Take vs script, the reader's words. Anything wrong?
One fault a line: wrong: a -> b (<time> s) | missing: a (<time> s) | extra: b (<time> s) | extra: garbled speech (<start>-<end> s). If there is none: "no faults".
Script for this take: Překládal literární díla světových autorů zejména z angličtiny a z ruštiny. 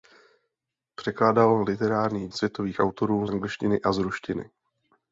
missing: díla (2.3 s)
missing: zejména z (3.3 s)